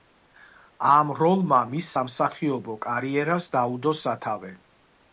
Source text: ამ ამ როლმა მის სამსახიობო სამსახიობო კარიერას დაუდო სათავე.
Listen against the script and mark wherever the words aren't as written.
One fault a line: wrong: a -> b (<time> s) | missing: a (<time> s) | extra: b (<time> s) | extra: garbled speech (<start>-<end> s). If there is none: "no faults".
missing: ამ (1.1 s)
missing: სამსახიობო (2.8 s)